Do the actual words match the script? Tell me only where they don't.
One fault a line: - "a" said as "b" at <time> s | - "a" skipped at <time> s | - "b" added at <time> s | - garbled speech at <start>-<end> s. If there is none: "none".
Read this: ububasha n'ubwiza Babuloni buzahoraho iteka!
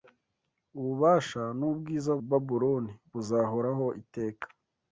none